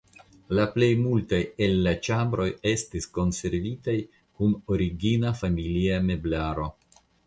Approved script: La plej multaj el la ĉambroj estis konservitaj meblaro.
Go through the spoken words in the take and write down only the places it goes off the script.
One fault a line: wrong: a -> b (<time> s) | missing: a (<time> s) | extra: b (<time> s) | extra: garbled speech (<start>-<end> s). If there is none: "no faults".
extra: kun origina familia (4.4 s)